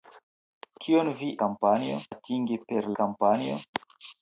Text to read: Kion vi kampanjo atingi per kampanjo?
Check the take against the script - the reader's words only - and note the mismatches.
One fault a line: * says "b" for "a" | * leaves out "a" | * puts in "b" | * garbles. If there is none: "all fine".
all fine